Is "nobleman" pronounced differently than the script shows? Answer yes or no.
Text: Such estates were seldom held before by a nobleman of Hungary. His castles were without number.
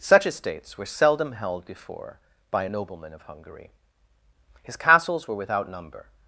no